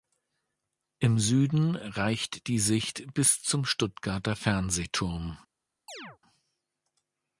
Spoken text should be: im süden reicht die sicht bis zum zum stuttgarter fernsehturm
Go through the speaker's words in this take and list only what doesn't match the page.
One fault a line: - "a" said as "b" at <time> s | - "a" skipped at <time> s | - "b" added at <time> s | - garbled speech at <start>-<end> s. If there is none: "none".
- "zum" skipped at 3.6 s